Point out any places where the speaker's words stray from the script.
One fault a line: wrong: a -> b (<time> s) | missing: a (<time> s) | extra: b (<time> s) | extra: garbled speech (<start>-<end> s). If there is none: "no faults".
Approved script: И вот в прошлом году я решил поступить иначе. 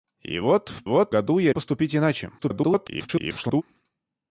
wrong: прошлом -> вот (0.8 s)
missing: решил (1.5 s)
extra: garbled speech (2.4-3.6 s)